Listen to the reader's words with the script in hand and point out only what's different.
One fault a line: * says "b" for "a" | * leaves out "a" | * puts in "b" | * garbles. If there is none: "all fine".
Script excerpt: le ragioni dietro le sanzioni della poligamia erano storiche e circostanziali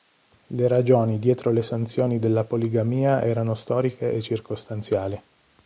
all fine